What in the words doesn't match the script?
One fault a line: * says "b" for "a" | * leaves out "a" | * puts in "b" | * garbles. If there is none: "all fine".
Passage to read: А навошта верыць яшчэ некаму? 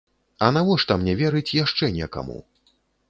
* puts in "мне"